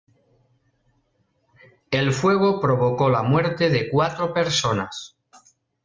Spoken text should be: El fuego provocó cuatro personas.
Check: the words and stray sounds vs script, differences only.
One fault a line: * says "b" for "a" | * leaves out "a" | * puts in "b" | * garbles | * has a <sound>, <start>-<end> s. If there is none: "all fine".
* puts in "la muerte de"